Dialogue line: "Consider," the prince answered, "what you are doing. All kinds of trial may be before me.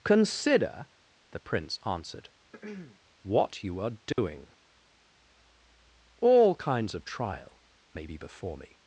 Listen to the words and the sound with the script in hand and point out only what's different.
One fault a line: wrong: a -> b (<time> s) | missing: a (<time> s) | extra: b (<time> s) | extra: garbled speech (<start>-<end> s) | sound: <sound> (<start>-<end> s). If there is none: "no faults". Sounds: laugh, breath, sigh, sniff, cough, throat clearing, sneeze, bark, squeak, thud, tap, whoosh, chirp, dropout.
sound: throat clearing (2.5-3.0 s)
sound: dropout (4.1-4.2 s)